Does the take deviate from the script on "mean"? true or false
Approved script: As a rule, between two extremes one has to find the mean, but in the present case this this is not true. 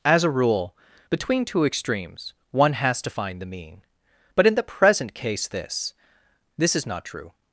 false